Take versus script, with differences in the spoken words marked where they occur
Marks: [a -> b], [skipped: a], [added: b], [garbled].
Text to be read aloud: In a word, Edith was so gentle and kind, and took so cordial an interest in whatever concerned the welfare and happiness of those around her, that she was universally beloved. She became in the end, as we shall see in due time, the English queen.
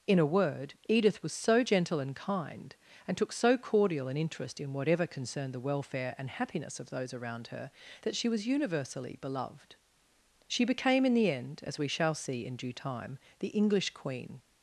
In a word, Edith was so gentle and kind, and took so cordial an interest in whatever concerned the welfare and happiness of those around her, that she was universally beloved. She became in the end, as we shall see in due time, the English queen.